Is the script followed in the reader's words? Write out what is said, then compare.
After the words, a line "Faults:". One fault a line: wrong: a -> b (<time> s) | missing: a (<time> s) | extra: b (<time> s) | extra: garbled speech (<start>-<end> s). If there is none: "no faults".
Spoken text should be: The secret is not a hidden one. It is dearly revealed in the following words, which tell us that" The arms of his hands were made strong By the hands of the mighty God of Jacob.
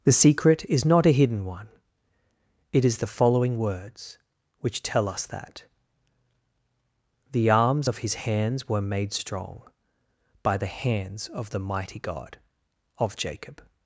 The secret is not a hidden one. It is the following words, which tell us that" The arms of his hands were made strong By the hands of the mighty God of Jacob.
Faults:
missing: dearly revealed in (3.0 s)